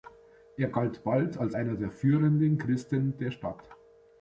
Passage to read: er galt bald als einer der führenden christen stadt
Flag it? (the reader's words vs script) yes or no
yes